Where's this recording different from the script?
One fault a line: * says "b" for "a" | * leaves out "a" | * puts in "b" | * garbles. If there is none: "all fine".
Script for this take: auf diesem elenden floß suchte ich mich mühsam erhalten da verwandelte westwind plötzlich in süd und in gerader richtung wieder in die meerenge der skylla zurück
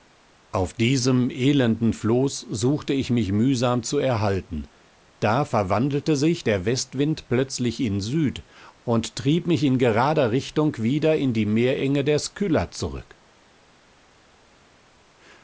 * puts in "zu"
* puts in "sich der"
* puts in "trieb mich"